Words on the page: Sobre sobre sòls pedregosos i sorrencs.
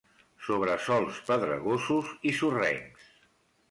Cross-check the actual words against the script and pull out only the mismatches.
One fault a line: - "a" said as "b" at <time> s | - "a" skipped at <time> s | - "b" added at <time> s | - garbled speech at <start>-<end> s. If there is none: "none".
- "sobre" skipped at 0.8 s